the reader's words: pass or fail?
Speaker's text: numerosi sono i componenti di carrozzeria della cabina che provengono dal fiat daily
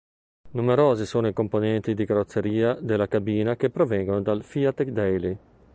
pass